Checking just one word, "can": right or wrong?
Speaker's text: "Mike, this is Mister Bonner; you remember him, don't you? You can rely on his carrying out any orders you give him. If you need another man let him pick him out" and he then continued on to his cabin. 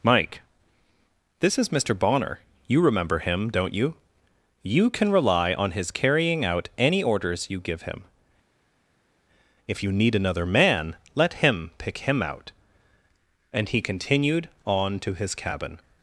right